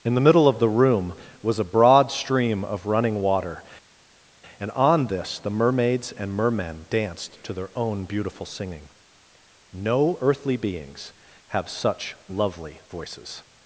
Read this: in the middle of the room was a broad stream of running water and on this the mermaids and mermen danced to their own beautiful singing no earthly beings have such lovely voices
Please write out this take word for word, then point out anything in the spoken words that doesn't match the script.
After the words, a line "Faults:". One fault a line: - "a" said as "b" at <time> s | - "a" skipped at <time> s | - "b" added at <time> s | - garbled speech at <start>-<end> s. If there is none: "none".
in the middle of the room was a broad stream of running water and on this the mermaids and mermen danced to their own beautiful singing no earthly beings have such lovely voices
Faults:
none